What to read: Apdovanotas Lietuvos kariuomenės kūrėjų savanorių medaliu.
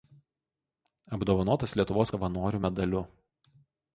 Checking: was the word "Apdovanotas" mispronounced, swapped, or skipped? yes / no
no